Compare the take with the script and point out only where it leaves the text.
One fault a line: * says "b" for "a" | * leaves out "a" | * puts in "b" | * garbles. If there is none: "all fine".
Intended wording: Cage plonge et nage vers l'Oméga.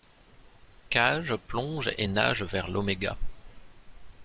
all fine